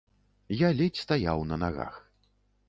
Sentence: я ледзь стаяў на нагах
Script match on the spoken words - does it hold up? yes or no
yes